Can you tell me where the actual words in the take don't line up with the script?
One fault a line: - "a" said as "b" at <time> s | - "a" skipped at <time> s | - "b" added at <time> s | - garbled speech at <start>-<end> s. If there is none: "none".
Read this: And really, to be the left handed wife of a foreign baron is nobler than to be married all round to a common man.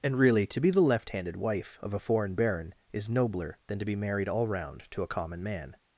none